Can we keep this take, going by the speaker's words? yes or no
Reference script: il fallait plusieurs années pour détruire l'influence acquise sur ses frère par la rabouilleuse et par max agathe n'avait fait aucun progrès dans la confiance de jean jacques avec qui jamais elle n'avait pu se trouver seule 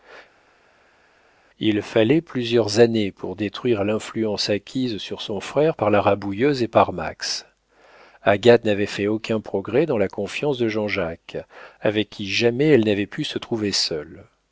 no